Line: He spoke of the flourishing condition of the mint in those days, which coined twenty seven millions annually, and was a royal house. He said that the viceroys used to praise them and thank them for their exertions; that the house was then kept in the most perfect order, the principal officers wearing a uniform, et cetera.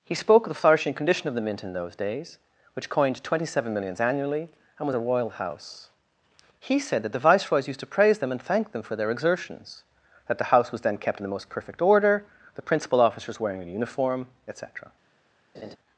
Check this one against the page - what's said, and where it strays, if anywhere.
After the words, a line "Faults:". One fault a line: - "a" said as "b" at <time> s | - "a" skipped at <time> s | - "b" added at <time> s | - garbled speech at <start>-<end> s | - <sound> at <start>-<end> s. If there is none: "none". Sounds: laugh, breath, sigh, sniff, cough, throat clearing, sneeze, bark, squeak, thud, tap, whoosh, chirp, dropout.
He spoke of the flourishing condition of the mint in those days, which coined twenty seven millions annually, and was a royal house. He said that the viceroys used to praise them and thank them for their exertions; that the house was then kept in the most perfect order, the principal officers wearing a uniform, et cetera.
Faults:
- laugh at 15.5-15.8 s